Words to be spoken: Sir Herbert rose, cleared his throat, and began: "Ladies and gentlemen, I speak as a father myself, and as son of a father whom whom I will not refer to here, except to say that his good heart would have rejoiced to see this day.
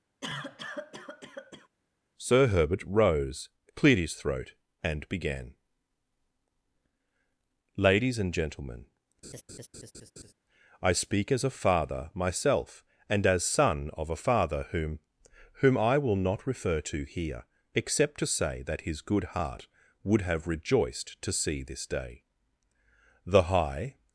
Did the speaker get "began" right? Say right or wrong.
right